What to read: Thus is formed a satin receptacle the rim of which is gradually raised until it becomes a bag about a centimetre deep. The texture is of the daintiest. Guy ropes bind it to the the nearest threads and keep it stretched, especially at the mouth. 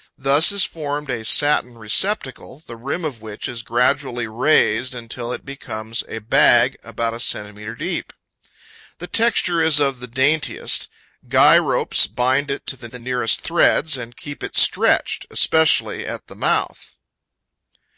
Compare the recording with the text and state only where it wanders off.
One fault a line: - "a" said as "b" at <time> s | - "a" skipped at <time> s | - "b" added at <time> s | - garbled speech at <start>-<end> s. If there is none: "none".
none